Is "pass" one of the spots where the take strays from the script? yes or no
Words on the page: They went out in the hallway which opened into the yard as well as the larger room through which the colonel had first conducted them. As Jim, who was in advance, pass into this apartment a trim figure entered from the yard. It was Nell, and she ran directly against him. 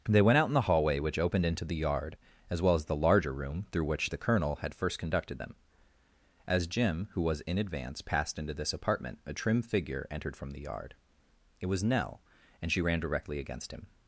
yes